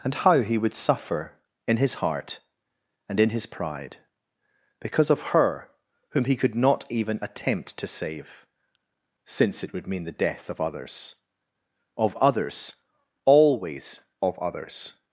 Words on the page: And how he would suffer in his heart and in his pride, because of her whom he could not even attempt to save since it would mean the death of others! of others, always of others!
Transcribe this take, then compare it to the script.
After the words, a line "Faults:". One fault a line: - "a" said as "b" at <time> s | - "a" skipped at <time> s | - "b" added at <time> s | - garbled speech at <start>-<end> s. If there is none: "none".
And how he would suffer in his heart and in his pride, because of her whom he could not even attempt to save since it would mean the death of others! of others, always of others!
Faults:
none